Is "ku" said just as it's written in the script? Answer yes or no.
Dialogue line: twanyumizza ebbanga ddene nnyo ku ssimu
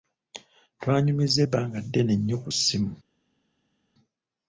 yes